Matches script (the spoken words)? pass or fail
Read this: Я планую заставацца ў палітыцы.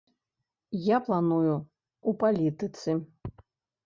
fail